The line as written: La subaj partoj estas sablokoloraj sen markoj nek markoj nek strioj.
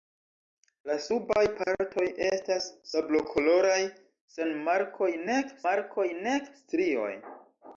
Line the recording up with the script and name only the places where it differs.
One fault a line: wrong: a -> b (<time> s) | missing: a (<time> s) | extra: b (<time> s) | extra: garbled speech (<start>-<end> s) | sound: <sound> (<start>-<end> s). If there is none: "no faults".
sound: dropout (1.6-1.7 s)